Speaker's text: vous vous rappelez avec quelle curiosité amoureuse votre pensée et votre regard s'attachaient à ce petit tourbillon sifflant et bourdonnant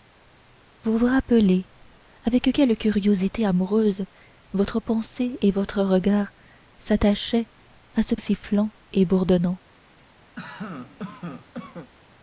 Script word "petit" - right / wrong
wrong